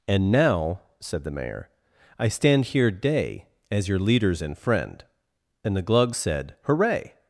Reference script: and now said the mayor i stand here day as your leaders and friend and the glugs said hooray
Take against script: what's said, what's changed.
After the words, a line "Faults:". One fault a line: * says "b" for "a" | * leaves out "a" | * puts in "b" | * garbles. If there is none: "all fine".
and now said the mayor i stand here day as your leaders and friend and the glugs said hooray
Faults:
all fine